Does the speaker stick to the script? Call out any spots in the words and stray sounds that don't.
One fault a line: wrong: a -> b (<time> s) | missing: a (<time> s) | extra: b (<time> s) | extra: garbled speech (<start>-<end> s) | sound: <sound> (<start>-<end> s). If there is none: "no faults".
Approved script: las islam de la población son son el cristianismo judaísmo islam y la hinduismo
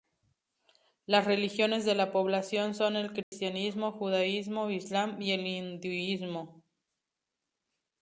wrong: islam -> religiones (1.2 s)
missing: son (3.0 s)
sound: dropout (3.2-3.3 s)
wrong: la -> el (5.3 s)